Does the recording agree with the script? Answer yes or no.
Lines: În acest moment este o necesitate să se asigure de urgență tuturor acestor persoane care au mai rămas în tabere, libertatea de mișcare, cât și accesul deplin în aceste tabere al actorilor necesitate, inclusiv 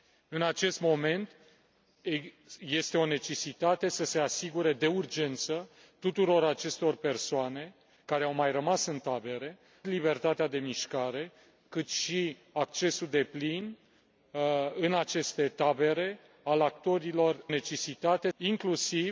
yes